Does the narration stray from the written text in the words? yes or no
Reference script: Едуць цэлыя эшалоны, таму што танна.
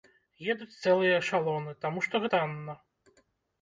no